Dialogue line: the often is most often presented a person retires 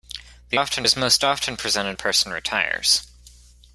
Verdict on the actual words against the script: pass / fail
pass